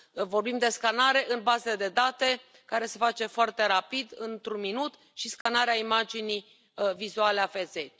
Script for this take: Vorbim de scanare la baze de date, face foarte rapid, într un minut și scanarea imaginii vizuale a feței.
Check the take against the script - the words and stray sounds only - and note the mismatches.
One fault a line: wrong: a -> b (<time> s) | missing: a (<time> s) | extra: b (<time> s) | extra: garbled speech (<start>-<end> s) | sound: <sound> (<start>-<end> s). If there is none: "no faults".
wrong: la -> în (1.3 s)
extra: care se (2.6 s)
sound: dropout (5.4-5.5 s)